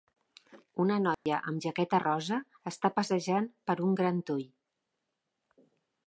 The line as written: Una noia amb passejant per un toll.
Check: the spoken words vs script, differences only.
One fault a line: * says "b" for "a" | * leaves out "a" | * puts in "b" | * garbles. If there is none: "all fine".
* puts in "jaqueta rosa està"
* puts in "gran"